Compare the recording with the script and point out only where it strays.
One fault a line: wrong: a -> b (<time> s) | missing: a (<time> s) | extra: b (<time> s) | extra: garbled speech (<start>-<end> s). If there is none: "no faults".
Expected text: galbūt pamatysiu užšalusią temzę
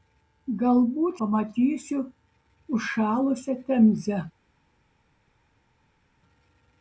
no faults